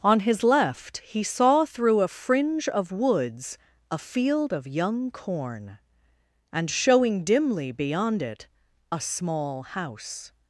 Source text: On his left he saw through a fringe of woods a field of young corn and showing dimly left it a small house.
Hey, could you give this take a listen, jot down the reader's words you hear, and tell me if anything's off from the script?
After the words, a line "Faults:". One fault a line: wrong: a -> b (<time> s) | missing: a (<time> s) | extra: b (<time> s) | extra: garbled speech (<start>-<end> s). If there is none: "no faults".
On his left he saw through a fringe of woods a field of young corn and showing dimly beyond it a small house.
Faults:
wrong: left -> beyond (7.7 s)